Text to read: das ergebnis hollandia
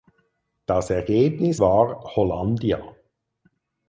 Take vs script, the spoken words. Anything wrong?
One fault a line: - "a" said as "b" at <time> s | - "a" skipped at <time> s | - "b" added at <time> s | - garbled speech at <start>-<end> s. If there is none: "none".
- "war" added at 1.6 s